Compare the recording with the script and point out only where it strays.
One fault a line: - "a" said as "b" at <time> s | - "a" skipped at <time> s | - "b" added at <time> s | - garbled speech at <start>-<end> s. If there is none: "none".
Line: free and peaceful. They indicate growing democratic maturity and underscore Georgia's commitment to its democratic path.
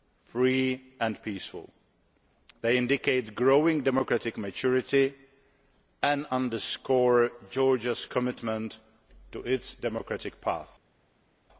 none